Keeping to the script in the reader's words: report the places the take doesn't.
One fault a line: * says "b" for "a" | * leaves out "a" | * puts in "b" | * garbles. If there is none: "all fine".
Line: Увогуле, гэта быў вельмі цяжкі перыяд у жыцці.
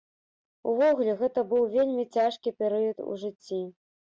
all fine